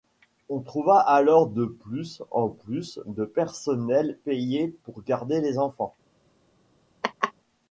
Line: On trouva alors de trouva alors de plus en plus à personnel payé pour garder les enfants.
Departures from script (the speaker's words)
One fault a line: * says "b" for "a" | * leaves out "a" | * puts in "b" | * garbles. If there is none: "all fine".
* leaves out "trouva alors de"
* says "de" for "à"